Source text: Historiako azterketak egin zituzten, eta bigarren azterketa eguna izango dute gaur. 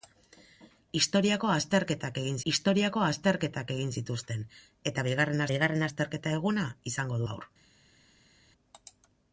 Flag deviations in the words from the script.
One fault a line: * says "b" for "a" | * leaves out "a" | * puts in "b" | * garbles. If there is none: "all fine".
* puts in "historiako azterketak egin"
* puts in "bigarren"
* leaves out "dute"